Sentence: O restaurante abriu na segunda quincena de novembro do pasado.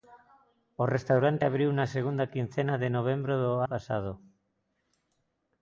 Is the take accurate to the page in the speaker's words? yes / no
yes